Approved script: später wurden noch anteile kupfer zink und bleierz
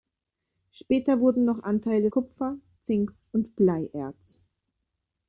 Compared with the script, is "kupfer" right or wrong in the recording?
right